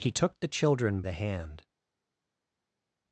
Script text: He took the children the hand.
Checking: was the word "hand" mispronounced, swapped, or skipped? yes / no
no